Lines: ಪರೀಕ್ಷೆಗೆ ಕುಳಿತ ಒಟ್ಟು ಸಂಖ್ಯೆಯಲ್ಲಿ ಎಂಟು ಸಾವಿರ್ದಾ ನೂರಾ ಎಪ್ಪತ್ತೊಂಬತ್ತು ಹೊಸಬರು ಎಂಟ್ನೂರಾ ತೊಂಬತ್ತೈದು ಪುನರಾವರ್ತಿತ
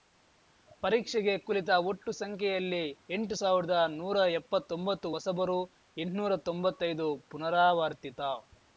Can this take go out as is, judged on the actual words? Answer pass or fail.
pass